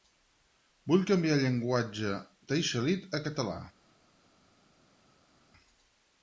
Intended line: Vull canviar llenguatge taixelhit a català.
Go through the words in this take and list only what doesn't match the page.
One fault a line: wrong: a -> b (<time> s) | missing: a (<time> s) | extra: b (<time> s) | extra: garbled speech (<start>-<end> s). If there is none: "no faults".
no faults